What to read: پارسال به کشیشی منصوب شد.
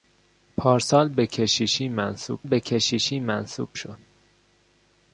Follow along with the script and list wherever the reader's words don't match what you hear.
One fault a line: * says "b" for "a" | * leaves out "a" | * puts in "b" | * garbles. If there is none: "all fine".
* puts in "به کشیشی منصوب"